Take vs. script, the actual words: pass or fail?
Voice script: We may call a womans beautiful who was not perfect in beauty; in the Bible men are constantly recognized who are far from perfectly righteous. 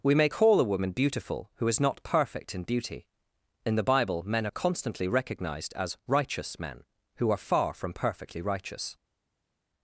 fail